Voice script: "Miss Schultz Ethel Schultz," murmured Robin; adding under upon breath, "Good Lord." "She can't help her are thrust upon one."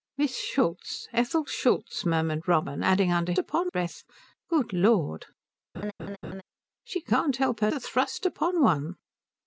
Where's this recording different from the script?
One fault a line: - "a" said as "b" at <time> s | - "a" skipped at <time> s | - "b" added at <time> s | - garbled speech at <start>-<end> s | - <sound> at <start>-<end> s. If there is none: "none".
- laugh at 5.7-6.4 s